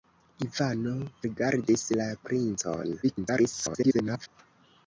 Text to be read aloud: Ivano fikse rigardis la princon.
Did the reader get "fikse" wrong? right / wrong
wrong